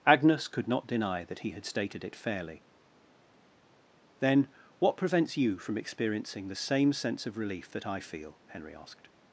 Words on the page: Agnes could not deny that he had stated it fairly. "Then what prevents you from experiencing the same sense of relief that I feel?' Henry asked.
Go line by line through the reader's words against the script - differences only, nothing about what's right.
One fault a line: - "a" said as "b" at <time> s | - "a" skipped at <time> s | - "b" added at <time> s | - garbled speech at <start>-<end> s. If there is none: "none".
none